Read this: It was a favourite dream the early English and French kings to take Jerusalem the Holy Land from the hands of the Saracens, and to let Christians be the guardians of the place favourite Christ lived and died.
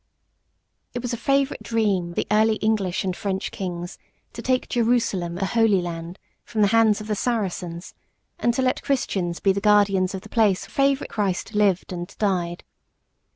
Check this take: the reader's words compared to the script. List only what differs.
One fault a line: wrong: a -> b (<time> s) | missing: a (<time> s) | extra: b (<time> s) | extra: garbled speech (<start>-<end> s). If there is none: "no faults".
no faults